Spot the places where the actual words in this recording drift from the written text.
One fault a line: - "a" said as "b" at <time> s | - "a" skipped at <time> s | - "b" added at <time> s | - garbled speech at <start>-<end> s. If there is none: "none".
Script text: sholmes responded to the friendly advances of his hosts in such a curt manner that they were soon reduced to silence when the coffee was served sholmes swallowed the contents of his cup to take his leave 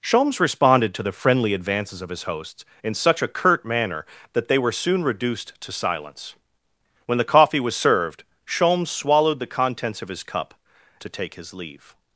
none